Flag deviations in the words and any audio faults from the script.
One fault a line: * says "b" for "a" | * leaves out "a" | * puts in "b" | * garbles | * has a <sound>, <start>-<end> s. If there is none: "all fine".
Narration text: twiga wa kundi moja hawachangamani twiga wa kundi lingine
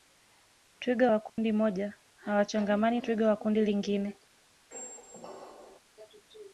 * has a dropout, 1.3-1.4 s
* has a squeak, 4.7-5.8 s